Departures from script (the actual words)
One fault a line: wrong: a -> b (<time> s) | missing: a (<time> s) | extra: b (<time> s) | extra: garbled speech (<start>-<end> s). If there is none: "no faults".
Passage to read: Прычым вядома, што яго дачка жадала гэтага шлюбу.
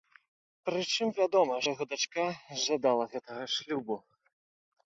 missing: што (1.6 s)